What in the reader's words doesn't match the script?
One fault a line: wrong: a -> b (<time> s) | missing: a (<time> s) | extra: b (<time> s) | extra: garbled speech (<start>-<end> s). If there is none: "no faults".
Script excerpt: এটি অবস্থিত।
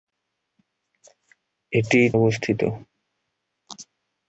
no faults